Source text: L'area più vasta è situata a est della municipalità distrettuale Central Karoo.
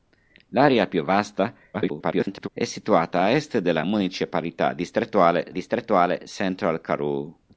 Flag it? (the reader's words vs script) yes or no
yes